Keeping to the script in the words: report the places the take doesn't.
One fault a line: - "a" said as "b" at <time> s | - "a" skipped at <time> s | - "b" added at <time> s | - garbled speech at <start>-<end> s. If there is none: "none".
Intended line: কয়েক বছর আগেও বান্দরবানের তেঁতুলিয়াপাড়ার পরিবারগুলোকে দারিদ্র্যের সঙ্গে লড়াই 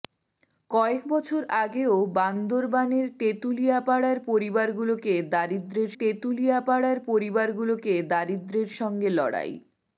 - "তেঁতুলিয়াপাড়ার পরিবারগুলোকে দারিদ্র্যের" added at 6.0 s